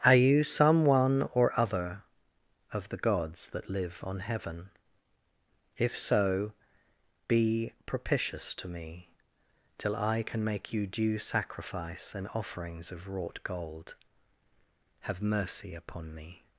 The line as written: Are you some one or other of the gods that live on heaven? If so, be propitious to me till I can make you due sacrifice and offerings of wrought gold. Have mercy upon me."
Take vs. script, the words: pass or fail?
pass